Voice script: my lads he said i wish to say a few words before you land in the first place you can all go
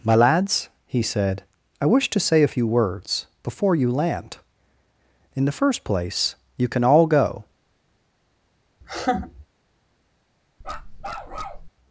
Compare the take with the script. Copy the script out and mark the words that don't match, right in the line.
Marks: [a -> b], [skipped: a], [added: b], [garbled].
my lads he said i wish to say a few words before you land in the first place you can all go